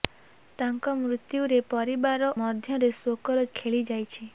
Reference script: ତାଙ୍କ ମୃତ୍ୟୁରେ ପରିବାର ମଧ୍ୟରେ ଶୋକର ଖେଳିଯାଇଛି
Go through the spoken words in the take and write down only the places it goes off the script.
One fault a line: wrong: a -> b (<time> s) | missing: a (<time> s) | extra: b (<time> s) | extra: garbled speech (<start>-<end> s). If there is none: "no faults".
no faults